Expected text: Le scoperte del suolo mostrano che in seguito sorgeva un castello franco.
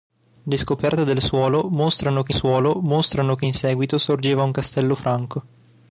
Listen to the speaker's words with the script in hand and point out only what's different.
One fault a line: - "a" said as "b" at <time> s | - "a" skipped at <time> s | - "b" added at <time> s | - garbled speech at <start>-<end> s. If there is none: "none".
- "suolo mostrano che" added at 2.3 s